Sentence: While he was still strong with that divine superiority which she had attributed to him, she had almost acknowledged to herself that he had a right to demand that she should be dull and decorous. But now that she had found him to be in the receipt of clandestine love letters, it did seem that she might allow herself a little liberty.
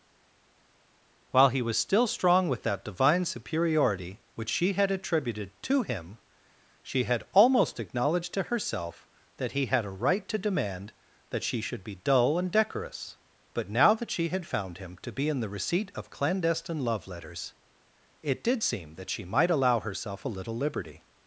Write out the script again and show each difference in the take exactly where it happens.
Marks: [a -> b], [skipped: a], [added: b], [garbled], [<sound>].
While he was still strong with that divine superiority which she had attributed to him, she had almost acknowledged to herself that he had a right to demand that she should be dull and decorous. But now that she had found him to be in the receipt of clandestine love letters, it did seem that she might allow herself a little liberty.